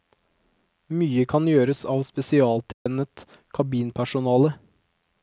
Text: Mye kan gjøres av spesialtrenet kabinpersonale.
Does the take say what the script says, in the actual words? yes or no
yes